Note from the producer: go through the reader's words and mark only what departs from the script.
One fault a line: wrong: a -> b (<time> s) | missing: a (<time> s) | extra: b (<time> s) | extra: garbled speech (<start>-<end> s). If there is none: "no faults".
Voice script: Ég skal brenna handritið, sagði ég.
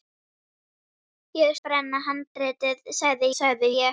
missing: skal (1.6 s)
extra: sagði (3.4 s)